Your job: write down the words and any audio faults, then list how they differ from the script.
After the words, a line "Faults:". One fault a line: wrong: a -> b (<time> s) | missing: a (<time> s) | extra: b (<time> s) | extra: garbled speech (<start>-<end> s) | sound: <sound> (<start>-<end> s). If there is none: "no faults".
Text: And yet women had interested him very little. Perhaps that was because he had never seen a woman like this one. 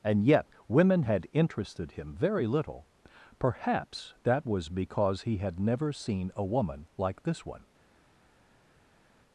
And yet women had interested him very little. Perhaps that was because he had never seen a woman like this one.
Faults:
no faults